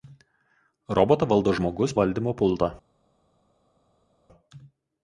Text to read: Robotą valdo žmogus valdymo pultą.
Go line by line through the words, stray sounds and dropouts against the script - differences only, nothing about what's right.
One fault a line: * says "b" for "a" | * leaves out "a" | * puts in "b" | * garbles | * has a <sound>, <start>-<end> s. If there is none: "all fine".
all fine